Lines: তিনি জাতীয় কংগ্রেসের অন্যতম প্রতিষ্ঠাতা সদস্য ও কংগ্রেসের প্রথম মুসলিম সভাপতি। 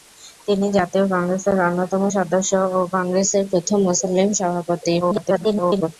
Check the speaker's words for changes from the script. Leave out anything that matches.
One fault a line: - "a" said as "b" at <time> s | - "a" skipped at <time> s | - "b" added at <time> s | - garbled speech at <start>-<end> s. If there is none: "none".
- "প্রতিষ্ঠাতা" skipped at 2.0 s
- garbled speech at 5.0-5.9 s